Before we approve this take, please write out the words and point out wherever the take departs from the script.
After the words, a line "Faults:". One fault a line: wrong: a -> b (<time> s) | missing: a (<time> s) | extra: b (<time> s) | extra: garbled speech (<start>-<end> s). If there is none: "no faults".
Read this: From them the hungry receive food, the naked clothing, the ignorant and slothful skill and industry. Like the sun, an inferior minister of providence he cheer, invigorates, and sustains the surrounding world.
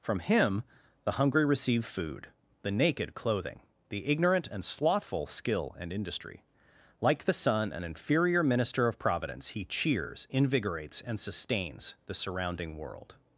From him the hungry receive food, the naked clothing, the ignorant and slothful skill and industry. Like the sun, an inferior minister of providence he cheers, invigorates, and sustains the surrounding world.
Faults:
wrong: them -> him (0.2 s)
wrong: cheer -> cheers (9.6 s)